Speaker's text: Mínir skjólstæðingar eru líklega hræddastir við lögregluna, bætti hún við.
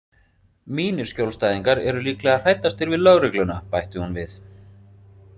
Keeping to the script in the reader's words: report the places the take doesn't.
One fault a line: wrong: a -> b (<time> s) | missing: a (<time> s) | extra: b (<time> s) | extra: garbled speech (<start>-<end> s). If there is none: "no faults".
no faults